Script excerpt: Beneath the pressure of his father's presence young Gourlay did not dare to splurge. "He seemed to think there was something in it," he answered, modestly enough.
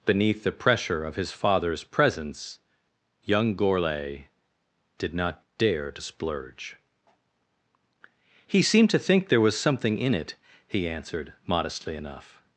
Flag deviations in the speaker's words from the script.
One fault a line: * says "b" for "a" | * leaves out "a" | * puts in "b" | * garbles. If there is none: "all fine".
all fine